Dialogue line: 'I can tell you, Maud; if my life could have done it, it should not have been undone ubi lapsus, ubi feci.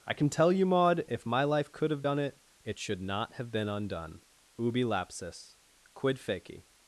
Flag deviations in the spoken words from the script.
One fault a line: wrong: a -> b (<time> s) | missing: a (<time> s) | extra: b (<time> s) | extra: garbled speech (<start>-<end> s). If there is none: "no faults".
wrong: ubi -> quid (5.9 s)